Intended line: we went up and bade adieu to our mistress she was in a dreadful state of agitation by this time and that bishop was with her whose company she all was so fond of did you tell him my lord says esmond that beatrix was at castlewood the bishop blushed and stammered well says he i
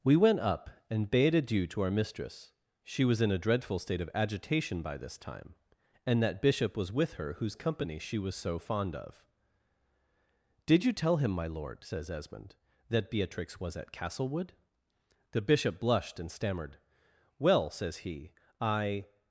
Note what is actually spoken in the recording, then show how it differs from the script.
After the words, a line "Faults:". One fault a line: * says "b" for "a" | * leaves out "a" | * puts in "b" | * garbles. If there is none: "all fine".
we went up and bade adieu to our mistress she was in a dreadful state of agitation by this time and that bishop was with her whose company she was so fond of did you tell him my lord says esmond that beatrix was at castlewood the bishop blushed and stammered well says he i
Faults:
* leaves out "all"